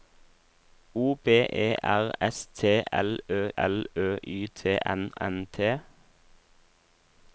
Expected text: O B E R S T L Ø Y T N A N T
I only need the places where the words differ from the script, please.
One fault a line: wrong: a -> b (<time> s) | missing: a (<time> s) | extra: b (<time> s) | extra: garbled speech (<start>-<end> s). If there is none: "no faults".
extra: L Ø (3.6 s)
missing: A (5.1 s)